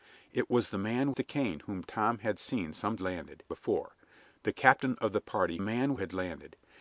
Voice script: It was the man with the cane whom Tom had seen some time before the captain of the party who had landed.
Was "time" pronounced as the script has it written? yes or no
no